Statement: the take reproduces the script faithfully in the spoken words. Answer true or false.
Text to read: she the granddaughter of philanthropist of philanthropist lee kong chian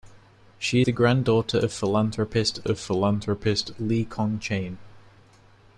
true